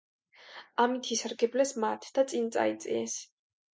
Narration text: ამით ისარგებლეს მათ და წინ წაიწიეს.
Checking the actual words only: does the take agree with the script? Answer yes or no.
yes